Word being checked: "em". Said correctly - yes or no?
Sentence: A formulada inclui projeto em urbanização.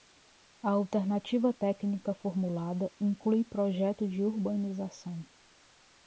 no